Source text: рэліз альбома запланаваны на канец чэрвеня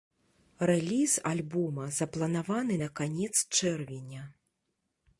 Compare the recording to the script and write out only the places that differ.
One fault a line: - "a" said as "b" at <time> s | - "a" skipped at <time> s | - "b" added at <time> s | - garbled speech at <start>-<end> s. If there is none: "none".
none